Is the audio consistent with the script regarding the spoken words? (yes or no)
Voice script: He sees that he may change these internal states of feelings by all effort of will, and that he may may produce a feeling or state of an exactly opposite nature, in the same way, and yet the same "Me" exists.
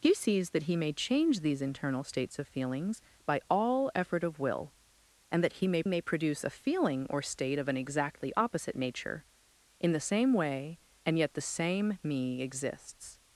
yes